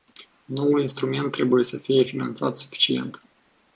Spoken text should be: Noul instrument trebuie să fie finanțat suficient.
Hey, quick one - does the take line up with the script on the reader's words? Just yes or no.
yes